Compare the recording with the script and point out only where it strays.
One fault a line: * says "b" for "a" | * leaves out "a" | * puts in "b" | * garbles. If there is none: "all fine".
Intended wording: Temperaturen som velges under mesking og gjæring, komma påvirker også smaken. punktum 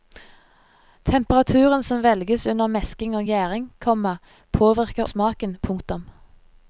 * leaves out "også"